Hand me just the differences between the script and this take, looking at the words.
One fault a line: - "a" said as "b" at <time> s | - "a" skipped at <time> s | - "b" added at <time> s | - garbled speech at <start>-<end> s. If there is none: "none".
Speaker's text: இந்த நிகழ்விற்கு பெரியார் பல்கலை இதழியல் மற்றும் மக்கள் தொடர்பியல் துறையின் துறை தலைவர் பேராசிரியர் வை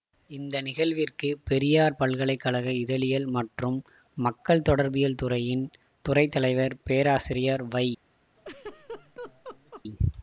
- "கழக" added at 2.4 s